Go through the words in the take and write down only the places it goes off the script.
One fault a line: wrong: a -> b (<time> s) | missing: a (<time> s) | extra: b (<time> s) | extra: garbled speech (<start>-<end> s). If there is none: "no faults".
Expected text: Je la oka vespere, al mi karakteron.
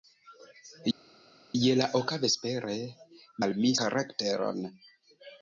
no faults